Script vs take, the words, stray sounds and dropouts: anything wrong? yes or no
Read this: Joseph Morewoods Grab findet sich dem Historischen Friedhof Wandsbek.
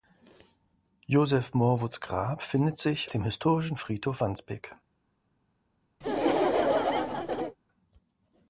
yes